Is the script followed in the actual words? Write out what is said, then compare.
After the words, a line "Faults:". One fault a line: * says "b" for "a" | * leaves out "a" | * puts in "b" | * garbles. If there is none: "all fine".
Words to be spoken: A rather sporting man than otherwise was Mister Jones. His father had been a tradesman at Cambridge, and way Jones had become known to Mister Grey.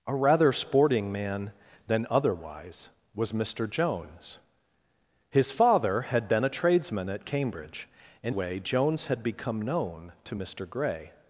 A rather sporting man than otherwise was Mister Jones. His father had been a tradesman at Cambridge, and way Jones had become known to Mister Grey.
Faults:
all fine